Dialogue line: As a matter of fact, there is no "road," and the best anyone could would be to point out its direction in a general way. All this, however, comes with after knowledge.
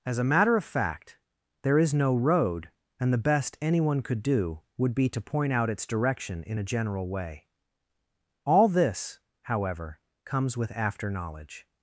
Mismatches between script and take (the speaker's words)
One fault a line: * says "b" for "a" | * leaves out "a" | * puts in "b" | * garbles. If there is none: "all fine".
* puts in "do"